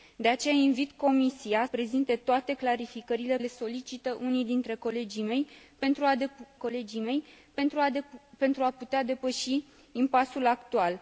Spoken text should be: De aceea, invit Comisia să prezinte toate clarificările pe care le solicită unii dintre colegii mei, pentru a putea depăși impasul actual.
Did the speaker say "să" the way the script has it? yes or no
no